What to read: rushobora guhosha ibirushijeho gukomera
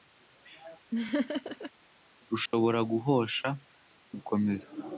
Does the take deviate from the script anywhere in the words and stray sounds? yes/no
yes